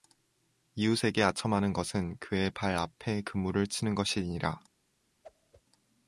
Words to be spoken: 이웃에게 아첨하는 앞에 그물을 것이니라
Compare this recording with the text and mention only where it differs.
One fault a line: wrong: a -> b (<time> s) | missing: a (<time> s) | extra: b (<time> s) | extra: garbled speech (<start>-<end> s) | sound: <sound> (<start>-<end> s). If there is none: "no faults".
extra: 것은 그의 발 (1.7 s)
extra: 치는 (3.7 s)
sound: whoosh (5.2-5.6 s)